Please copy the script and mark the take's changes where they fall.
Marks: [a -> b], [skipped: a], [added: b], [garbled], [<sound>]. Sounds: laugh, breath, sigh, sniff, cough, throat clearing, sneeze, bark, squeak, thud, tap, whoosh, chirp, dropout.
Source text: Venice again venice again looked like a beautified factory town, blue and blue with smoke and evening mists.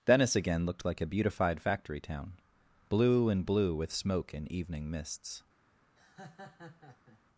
Venice again [skipped: venice again] looked like a beautified factory town, blue and blue with smoke and evening mists. [laugh]